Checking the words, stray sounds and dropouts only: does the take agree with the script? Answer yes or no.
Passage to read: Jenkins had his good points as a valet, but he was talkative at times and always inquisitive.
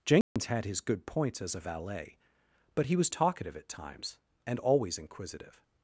no